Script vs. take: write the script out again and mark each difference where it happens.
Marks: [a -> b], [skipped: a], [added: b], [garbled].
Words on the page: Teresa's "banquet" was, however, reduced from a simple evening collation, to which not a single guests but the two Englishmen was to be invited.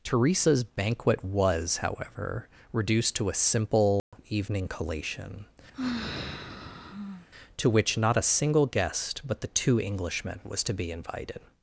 Teresa's "banquet" was, however, reduced [from -> to] a simple evening collation, to which not a single [guests -> guest] but the two Englishmen was to be invited.